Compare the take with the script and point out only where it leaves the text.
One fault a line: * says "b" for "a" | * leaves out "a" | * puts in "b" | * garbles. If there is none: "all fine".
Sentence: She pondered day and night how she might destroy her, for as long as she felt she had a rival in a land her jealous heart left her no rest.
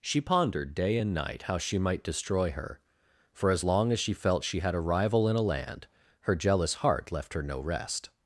all fine